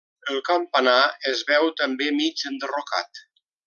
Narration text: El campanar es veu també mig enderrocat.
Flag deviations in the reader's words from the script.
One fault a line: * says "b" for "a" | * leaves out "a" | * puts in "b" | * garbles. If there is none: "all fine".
all fine